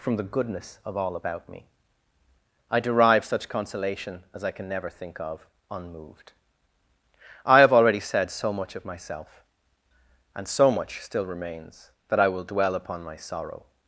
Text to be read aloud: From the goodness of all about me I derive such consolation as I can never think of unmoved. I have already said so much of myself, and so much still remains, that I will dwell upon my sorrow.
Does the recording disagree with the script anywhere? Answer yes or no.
no